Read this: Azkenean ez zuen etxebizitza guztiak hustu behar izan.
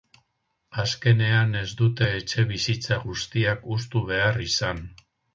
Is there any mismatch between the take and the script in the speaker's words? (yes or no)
yes